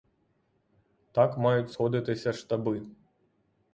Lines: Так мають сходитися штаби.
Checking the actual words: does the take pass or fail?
pass